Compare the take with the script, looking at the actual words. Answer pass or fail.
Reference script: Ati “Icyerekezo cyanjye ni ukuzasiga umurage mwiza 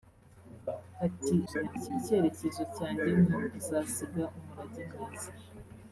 fail